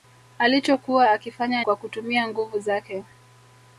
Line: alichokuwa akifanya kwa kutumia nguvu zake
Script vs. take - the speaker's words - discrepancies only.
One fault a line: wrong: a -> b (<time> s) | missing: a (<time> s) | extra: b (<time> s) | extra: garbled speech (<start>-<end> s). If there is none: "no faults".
no faults